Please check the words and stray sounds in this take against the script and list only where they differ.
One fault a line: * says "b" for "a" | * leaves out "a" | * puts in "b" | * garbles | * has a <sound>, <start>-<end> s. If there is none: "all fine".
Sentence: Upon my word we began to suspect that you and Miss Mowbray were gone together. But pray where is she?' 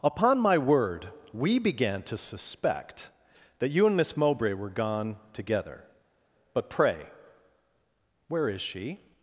all fine